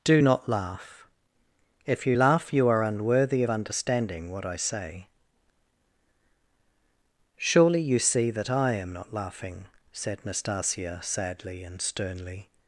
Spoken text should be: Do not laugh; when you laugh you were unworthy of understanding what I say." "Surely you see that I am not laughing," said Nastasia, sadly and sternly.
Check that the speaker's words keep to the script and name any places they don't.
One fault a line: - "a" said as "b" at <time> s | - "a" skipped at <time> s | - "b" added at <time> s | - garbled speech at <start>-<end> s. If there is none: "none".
- "when" said as "if" at 1.9 s
- "were" said as "are" at 2.7 s